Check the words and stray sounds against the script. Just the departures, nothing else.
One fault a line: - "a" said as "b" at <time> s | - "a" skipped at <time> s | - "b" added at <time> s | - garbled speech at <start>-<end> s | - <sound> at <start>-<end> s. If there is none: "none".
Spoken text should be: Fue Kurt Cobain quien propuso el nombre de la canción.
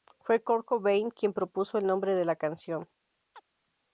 - chirp at 3.3-3.4 s